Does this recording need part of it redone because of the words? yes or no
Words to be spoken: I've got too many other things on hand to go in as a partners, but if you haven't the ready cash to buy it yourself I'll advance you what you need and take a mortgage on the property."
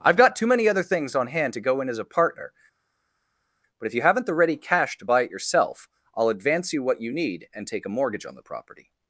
yes